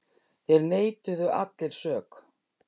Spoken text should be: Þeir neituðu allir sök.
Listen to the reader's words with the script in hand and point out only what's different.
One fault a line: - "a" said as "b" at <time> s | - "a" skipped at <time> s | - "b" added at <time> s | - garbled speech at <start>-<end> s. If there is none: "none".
none